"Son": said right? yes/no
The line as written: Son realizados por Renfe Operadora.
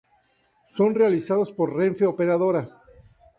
yes